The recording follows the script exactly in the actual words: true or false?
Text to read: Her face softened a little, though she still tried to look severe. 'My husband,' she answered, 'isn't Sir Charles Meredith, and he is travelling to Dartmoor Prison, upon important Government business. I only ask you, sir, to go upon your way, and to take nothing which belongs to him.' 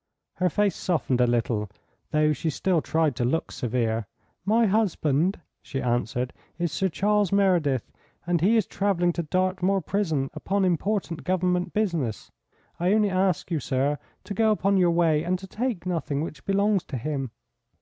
false